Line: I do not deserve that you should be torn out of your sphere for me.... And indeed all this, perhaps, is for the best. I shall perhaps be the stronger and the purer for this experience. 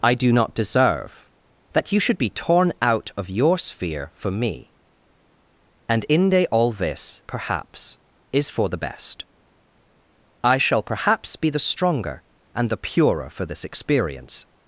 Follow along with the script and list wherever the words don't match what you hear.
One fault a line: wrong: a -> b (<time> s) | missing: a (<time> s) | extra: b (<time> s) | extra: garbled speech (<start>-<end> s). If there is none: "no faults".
wrong: indeed -> inde (6.1 s)